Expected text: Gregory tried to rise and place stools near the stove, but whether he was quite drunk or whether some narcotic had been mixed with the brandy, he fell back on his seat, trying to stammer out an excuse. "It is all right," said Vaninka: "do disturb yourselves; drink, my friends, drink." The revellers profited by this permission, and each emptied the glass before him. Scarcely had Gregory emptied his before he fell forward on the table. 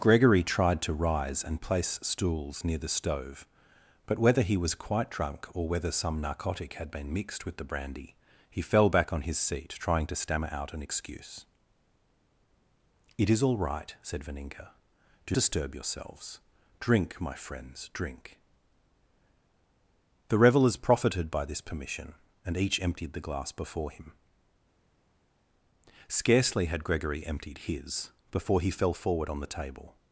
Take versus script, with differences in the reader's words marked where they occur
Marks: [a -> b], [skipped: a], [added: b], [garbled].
Gregory tried to rise and place stools near the stove, but whether he was quite drunk or whether some narcotic had been mixed with the brandy, he fell back on his seat, trying to stammer out an excuse. "It is all right," said Vaninka: "do disturb yourselves; drink, my friends, drink." The revellers profited by this permission, and each emptied the glass before him. Scarcely had Gregory emptied his before he fell forward on the table.